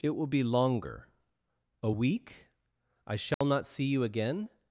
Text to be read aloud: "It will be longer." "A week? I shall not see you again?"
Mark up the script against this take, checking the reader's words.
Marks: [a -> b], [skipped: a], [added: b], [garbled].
"It will be longer." "A week? I shall not see you again?"